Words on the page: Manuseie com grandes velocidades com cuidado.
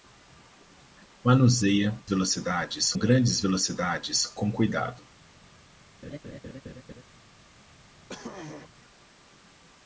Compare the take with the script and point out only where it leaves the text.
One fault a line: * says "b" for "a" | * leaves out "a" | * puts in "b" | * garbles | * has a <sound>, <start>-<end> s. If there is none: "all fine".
* says "velocidades" for "com"
* has a laugh, 6.0-7.0 s
* has a throat clearing, 8.1-8.7 s